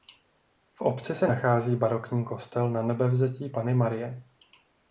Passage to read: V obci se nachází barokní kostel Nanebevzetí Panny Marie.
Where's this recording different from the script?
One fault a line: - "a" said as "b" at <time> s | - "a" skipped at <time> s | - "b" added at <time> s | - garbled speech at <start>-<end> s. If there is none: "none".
none